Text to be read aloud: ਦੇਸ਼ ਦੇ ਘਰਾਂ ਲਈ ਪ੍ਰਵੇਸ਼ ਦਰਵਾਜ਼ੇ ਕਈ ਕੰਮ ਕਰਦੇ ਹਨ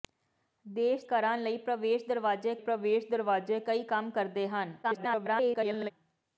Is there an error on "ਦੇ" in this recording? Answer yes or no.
yes